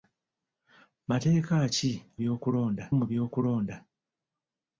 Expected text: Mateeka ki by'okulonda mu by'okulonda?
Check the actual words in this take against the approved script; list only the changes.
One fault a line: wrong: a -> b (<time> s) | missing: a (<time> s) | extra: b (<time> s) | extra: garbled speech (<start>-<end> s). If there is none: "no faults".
no faults